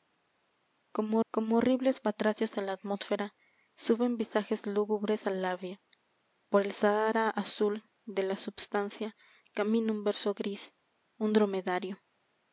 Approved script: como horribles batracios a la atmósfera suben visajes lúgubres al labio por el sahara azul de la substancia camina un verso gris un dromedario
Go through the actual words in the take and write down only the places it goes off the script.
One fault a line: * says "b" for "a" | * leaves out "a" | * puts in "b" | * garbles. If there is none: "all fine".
* puts in "como"